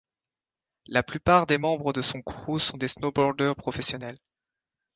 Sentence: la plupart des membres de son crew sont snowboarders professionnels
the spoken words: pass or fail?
fail